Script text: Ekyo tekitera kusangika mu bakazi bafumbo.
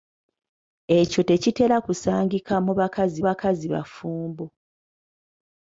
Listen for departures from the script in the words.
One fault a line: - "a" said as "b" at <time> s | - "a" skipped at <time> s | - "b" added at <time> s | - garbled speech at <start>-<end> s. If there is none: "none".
- "bakazi" added at 3.3 s